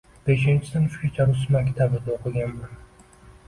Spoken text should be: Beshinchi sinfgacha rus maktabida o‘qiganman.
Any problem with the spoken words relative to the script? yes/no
no